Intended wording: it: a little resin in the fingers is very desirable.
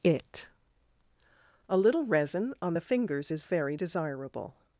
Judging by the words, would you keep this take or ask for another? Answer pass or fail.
fail